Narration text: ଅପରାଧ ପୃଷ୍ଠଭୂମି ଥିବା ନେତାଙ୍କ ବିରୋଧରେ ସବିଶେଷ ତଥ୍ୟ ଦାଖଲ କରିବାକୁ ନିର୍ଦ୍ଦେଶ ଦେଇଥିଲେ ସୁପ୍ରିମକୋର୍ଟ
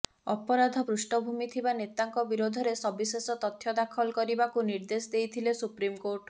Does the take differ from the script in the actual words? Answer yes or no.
no